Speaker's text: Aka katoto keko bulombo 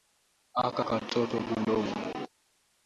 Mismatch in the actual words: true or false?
true